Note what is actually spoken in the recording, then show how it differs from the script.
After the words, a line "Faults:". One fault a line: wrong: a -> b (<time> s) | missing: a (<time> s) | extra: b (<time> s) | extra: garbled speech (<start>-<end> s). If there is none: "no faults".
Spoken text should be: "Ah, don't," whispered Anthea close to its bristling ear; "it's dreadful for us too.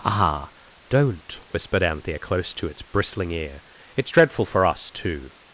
"Ah, don't," whispered Anthea close to its bristling ear; "it's dreadful for us too.
Faults:
no faults